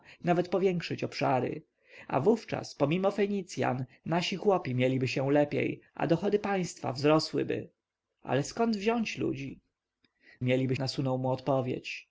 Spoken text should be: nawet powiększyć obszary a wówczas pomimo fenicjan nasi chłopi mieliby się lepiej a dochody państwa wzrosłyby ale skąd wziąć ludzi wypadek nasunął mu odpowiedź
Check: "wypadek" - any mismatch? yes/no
yes